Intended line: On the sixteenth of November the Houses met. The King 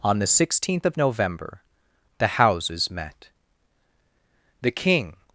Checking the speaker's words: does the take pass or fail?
pass